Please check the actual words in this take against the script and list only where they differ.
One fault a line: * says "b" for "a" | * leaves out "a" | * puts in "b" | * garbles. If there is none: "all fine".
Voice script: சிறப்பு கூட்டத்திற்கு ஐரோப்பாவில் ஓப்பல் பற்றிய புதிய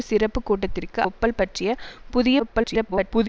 * leaves out "ஐரோப்பாவில்"
* garbles